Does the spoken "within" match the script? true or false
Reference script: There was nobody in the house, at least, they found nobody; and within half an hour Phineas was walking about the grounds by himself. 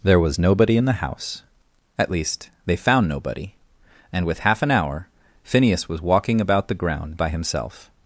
false